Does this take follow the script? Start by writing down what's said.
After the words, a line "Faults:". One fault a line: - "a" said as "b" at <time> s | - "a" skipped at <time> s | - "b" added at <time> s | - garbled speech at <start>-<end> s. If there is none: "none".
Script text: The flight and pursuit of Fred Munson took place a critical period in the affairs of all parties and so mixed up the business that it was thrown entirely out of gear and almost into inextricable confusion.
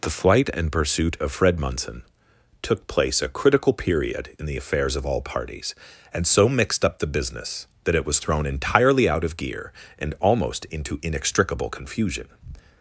The flight and pursuit of Fred Munson took place a critical period in the affairs of all parties and so mixed up the business that it was thrown entirely out of gear and almost into inextricable confusion.
Faults:
none